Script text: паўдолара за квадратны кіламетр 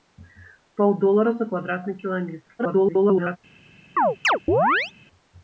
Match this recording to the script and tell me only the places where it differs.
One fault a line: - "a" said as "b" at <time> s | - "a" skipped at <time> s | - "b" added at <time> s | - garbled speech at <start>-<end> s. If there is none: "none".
- garbled speech at 2.6-3.4 s